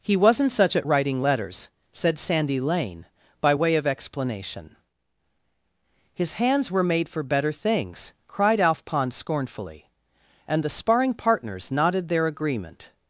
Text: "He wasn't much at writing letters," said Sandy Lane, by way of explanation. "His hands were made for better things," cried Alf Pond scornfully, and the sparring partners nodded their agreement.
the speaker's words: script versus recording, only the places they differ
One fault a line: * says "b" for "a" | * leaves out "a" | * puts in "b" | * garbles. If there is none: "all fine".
* says "such" for "much"